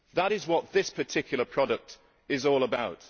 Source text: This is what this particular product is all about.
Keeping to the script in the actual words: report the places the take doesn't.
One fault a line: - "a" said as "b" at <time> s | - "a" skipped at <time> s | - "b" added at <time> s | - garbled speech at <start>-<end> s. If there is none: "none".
- "This" said as "That" at 0.1 s